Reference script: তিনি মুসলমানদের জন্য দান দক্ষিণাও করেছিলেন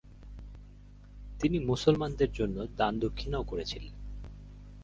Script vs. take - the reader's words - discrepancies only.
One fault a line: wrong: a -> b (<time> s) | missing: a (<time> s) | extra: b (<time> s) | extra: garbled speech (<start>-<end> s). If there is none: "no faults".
no faults